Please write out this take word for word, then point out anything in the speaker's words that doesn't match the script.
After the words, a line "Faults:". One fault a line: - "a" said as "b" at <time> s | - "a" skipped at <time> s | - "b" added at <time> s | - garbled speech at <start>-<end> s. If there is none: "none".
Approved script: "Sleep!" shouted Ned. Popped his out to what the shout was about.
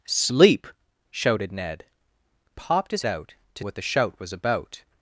"Sleep!" shouted Ned. Popped his out to what the shout was about.
Faults:
none